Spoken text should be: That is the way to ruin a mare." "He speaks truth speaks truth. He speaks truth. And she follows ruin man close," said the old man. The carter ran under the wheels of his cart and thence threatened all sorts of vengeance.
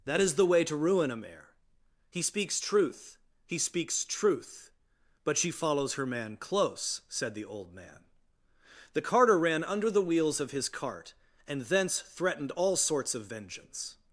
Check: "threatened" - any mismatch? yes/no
no